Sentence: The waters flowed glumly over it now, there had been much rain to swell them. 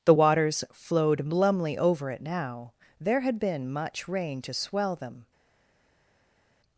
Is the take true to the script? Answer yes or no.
yes